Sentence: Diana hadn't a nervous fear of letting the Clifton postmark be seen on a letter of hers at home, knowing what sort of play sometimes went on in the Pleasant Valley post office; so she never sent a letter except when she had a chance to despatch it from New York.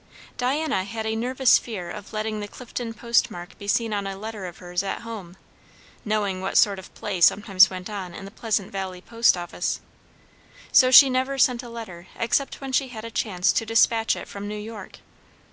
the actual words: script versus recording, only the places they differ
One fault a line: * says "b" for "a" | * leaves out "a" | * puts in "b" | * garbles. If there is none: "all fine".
* says "had" for "hadn't"